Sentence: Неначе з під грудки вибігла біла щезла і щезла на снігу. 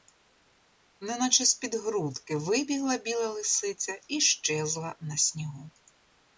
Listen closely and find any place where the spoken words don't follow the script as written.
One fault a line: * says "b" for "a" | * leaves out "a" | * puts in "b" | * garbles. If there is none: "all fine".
* says "лисиця" for "щезла"